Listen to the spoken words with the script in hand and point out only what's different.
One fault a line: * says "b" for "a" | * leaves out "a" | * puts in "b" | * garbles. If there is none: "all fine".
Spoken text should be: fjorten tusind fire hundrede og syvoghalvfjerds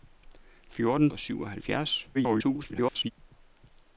* leaves out "tusind fire hundrede"
* garbles